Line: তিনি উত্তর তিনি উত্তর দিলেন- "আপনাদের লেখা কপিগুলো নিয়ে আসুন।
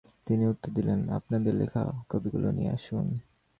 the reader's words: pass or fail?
fail